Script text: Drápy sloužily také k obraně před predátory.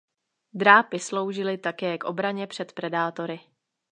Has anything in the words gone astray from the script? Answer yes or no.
no